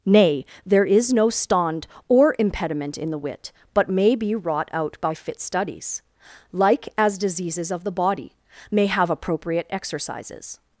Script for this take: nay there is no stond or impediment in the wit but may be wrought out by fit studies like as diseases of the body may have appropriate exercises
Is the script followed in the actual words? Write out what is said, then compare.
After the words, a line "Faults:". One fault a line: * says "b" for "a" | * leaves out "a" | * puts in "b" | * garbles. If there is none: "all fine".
nay there is no stond or impediment in the wit but may be wrought out by fit studies like as diseases of the body may have appropriate exercises
Faults:
all fine